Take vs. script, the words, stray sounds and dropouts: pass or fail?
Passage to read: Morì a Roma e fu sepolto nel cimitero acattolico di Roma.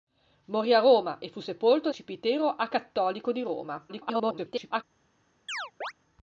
fail